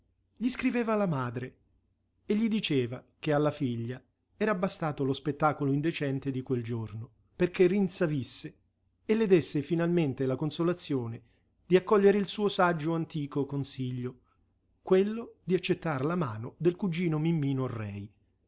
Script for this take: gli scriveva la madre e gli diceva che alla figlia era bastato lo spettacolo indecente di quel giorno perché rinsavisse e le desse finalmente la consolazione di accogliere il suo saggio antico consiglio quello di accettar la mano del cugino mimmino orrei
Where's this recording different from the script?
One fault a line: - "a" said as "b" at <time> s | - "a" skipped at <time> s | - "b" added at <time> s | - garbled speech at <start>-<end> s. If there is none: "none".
none